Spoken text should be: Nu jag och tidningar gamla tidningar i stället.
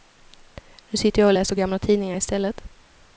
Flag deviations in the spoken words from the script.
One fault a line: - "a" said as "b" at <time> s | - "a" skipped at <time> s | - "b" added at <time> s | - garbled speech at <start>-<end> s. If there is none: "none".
- "sitter" added at 1.0 s
- "tidningar" said as "läser" at 1.3 s